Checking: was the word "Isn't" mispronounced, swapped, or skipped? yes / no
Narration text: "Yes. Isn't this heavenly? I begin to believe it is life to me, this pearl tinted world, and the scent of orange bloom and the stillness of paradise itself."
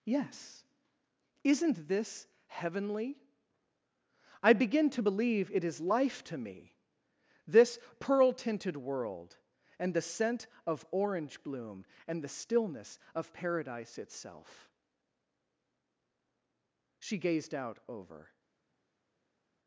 no